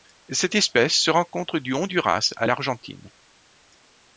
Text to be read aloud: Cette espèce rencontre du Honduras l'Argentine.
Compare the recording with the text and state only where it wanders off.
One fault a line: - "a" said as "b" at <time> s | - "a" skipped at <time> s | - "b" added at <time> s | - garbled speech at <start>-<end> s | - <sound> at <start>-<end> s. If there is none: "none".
- "se" added at 0.9 s
- "à" added at 2.4 s